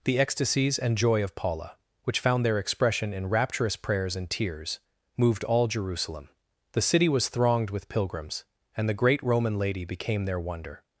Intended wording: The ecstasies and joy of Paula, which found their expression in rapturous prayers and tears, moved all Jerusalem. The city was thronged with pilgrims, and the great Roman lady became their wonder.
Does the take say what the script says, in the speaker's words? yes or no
yes